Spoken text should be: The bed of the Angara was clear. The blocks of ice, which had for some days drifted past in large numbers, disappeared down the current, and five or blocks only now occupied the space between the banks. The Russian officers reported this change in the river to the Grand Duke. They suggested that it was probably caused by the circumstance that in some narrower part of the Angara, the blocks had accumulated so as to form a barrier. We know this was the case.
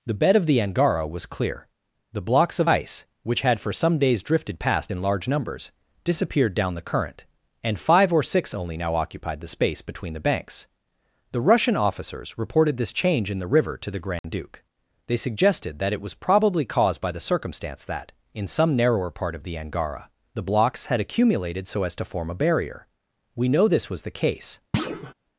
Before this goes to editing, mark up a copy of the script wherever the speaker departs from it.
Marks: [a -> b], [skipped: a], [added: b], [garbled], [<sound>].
The bed of the Angara was clear. The blocks of ice, which had for some days drifted past in large numbers, disappeared down the current, and five or [blocks -> six] only now occupied the space between the banks. The Russian officers reported this change in the river to the Grand [dropout] Duke. They suggested that it was probably caused by the circumstance that in some narrower part of the Angara, the blocks had accumulated so as to form a barrier. We know this was the case. [thud]